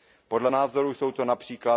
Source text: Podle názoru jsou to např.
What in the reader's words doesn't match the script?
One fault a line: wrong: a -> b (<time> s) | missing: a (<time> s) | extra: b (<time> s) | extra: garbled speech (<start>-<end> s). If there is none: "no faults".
no faults